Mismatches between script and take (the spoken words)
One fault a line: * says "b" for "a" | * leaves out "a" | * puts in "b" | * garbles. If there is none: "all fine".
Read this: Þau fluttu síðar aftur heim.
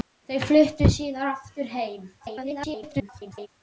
* garbles